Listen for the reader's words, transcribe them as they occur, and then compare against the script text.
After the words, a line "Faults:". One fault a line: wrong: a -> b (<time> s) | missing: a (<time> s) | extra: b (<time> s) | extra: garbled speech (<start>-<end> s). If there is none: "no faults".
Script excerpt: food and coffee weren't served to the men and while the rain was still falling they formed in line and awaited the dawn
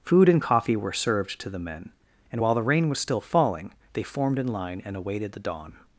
food and coffee were served to the men and while the rain was still falling they formed in line and awaited the dawn
Faults:
wrong: weren't -> were (0.8 s)